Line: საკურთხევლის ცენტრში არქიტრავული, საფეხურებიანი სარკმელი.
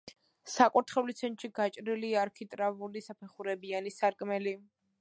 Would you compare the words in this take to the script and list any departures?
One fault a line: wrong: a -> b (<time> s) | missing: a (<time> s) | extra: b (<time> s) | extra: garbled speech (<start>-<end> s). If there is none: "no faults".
extra: გაჭრილია (1.6 s)